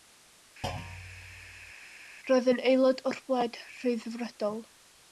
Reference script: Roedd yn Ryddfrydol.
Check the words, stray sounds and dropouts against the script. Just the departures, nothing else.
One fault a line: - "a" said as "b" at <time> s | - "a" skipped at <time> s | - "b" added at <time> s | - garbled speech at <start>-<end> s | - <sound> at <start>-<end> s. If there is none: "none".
- thud at 0.6-1.7 s
- "aelod o'r Blaid" added at 2.7 s